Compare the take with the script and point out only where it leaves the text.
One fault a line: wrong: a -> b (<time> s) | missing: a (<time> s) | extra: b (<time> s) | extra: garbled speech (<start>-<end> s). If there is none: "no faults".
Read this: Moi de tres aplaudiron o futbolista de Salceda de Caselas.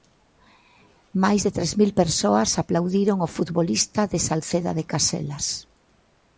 wrong: Moi -> Máis (1.2 s)
extra: mil persoas (1.8 s)